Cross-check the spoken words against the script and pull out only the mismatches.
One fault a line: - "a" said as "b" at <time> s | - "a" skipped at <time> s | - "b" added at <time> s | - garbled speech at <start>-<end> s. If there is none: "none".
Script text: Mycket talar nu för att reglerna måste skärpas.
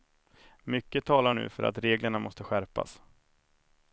none